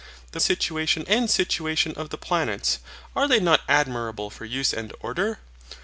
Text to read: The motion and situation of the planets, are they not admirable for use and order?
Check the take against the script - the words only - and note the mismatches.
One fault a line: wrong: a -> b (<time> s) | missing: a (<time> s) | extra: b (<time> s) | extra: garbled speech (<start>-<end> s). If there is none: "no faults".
wrong: motion -> situation (0.4 s)